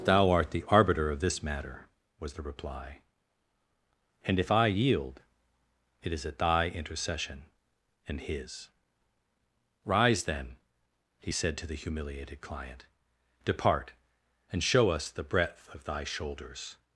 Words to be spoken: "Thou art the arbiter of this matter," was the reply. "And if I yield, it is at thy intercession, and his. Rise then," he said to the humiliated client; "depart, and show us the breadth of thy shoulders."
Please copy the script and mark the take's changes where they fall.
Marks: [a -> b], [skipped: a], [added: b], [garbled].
"Thou art the arbiter of this matter," was the reply. "And if I yield, it is at thy intercession, and his. Rise then," he said to the humiliated client; "depart, and show us the breadth of thy shoulders."